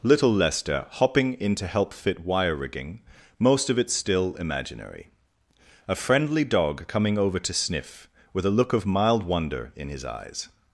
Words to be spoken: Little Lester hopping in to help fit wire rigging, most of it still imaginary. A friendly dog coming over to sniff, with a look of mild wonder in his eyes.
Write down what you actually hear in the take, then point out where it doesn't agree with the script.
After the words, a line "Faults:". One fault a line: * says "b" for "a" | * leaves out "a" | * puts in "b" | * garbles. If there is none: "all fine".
Little Lester hopping in to help fit wire rigging, most of it still imaginary. A friendly dog coming over to sniff, with a look of mild wonder in his eyes.
Faults:
all fine